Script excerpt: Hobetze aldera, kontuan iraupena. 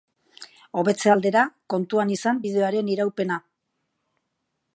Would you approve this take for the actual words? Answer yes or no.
no